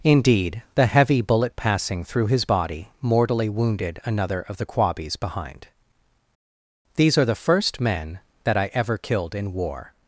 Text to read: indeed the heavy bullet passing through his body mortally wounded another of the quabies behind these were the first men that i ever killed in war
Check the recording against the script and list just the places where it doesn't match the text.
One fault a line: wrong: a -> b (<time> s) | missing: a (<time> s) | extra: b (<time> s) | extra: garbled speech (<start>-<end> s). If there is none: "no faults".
wrong: were -> are (7.2 s)